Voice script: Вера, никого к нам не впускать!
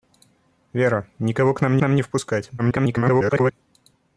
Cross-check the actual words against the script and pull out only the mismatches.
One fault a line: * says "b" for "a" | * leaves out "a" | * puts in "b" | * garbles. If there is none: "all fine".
* puts in "нам"
* garbles